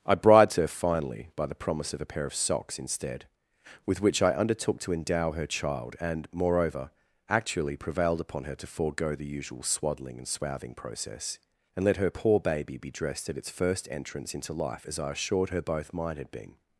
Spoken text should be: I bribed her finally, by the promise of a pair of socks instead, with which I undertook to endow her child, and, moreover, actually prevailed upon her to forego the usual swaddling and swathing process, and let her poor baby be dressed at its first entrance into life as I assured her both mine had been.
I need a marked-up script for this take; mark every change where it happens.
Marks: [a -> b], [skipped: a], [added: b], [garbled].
I bribed her finally, by the promise of a pair of socks instead, with which I undertook to endow her child, and, moreover, actually prevailed upon her to forego the usual swaddling and swathing process, and let her poor baby be dressed at its first entrance into life as I assured her both mine had been.